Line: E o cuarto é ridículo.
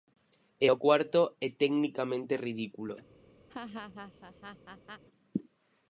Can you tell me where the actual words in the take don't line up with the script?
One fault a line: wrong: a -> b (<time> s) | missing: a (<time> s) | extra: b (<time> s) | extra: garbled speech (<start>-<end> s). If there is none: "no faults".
extra: tecnicamente (1.6 s)